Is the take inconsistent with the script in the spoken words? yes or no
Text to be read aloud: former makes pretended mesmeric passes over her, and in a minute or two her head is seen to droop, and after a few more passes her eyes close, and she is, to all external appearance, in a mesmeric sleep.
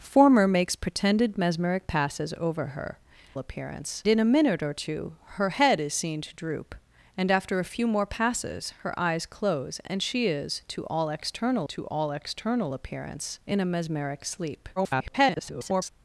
yes